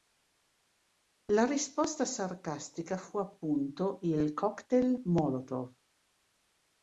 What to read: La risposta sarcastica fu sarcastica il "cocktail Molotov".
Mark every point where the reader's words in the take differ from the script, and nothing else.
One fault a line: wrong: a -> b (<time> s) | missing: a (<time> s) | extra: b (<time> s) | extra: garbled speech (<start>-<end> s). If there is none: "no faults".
wrong: sarcastica -> appunto (3.2 s)